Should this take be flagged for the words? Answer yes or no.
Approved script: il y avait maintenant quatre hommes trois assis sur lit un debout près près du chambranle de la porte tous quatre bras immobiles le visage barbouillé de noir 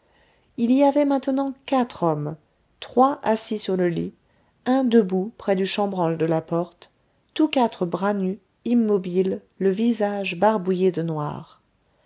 yes